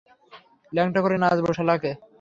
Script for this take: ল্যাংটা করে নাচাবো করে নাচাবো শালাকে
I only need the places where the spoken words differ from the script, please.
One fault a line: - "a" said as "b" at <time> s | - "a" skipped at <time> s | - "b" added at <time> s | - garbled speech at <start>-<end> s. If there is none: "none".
- "করে নাচাবো" skipped at 1.5 s